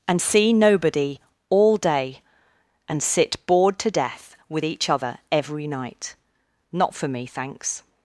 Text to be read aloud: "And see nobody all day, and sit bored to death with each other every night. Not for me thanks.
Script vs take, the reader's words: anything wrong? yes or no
no